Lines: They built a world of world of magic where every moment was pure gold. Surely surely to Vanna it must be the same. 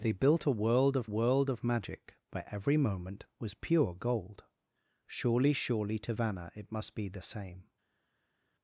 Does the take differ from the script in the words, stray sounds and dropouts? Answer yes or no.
no